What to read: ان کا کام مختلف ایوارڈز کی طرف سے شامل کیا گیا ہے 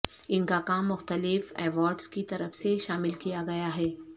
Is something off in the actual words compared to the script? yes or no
no